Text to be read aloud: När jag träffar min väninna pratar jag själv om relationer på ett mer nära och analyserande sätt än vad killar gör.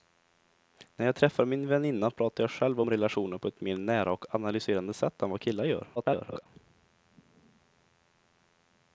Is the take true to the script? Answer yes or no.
no